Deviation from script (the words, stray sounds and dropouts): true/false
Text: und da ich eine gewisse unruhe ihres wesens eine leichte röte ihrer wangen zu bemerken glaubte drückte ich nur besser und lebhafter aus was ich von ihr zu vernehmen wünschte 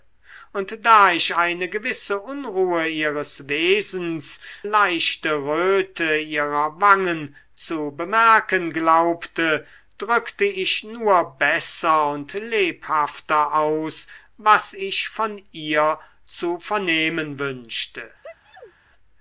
true